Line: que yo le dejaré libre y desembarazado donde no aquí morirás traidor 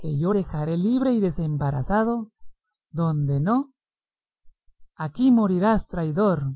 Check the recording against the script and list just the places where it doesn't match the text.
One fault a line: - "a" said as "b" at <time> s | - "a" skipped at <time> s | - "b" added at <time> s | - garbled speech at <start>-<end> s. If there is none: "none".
- "le" skipped at 0.3 s